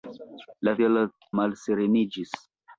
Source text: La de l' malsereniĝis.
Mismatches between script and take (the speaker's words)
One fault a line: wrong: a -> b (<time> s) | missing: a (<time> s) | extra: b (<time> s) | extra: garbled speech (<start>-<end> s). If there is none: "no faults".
no faults